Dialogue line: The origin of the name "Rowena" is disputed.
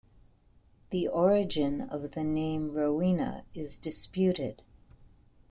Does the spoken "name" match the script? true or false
true